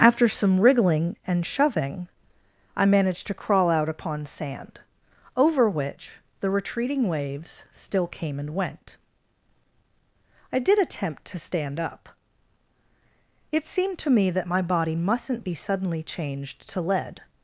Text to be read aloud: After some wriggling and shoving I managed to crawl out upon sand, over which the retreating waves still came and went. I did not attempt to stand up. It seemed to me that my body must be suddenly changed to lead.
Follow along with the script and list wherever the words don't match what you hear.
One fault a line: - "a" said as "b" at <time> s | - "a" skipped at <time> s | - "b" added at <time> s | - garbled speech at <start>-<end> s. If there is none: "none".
- "not" skipped at 10.8 s
- "must" said as "mustn't" at 15.0 s